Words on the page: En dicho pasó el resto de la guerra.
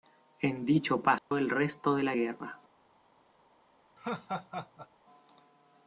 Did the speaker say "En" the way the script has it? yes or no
yes